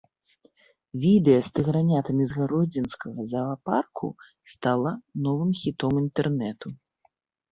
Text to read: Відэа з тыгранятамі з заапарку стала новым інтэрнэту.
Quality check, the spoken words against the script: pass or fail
fail